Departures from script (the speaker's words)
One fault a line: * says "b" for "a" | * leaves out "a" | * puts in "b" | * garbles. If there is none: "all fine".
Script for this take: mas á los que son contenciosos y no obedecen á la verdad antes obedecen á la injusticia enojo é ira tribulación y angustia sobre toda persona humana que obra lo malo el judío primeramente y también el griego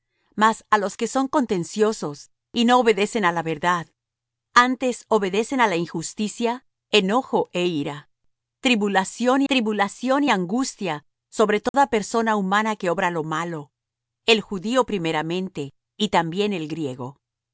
* puts in "tribulación"